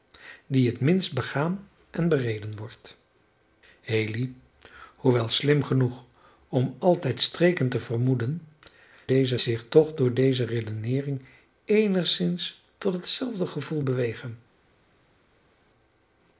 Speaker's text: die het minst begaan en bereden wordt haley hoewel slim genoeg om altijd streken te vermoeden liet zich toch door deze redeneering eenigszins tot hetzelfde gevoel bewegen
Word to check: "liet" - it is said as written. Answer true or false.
false